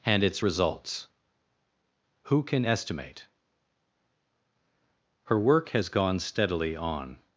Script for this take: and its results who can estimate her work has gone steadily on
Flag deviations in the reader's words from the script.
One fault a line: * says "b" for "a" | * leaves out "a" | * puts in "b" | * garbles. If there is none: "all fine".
all fine